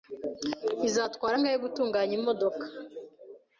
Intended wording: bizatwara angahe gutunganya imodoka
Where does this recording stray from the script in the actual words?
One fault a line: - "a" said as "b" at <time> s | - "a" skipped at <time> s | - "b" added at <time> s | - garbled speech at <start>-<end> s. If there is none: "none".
none